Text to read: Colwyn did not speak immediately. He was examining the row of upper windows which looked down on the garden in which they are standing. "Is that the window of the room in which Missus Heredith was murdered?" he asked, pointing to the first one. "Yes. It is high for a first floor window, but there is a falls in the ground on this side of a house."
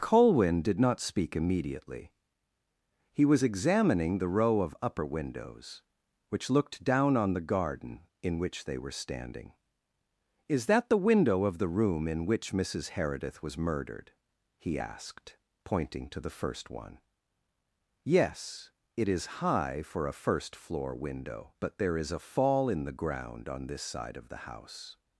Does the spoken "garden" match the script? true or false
true